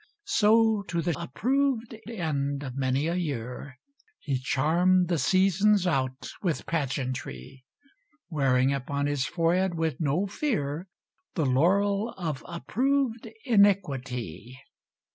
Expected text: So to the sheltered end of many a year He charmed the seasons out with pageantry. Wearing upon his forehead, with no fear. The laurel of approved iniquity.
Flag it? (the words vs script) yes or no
yes